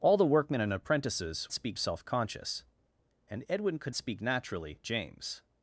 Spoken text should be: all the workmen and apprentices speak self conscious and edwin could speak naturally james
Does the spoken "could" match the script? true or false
true